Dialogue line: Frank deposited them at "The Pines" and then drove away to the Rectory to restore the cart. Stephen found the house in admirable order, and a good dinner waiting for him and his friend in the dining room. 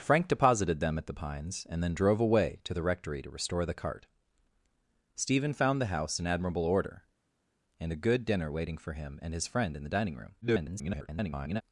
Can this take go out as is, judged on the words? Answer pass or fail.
fail